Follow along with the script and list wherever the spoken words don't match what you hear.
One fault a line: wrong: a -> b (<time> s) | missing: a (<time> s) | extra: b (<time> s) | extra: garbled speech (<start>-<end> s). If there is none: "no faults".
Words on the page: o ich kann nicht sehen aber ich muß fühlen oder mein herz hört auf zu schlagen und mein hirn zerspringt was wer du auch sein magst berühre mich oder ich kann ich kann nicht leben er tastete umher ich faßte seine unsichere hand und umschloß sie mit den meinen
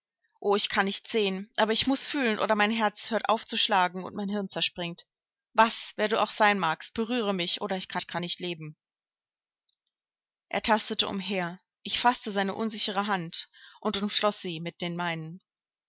no faults